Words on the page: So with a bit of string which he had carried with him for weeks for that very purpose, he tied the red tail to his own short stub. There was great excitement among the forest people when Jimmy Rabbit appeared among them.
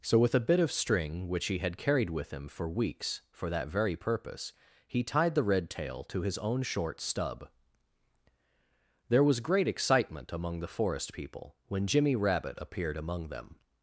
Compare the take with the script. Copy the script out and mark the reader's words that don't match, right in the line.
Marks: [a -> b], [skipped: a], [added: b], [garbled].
So with a bit of string which he had carried with him for weeks for that very purpose, he tied the red tail to his own short stub. There was great excitement among the forest people when Jimmy Rabbit appeared among them.